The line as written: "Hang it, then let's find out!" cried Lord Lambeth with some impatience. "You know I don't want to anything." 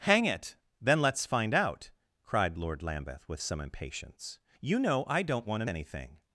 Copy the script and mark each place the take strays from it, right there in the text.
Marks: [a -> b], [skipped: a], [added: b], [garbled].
"Hang it, then let's find out!" cried Lord Lambeth with some impatience. "You know I don't want to anything."